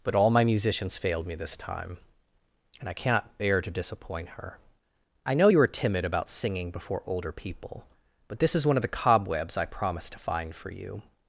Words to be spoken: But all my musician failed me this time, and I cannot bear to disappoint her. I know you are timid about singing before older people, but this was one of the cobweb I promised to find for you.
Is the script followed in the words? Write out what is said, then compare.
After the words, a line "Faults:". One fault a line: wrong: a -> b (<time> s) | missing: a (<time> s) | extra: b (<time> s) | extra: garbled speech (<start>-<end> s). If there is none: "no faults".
But all my musicians failed me this time, and I cannot bear to disappoint her. I know you are timid about singing before older people, but this is one of the cobwebs I promised to find for you.
Faults:
wrong: musician -> musicians (0.4 s)
wrong: was -> is (8.5 s)
wrong: cobweb -> cobwebs (8.9 s)